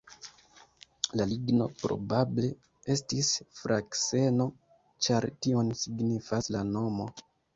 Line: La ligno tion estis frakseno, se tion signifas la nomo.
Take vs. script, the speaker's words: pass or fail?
fail